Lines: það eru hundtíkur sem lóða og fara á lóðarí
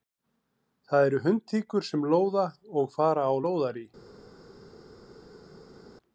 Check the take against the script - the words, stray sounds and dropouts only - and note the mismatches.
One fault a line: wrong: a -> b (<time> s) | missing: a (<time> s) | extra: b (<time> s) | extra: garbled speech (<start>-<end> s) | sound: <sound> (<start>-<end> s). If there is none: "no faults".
no faults